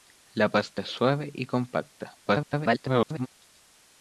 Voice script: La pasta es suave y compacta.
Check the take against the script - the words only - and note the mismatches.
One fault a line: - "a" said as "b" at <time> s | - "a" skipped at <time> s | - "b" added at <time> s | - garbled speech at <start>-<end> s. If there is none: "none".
- garbled speech at 2.3-3.3 s